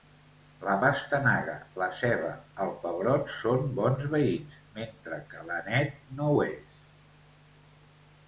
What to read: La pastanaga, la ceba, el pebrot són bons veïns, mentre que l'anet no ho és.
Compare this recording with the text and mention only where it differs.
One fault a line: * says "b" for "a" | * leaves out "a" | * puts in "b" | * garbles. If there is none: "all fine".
all fine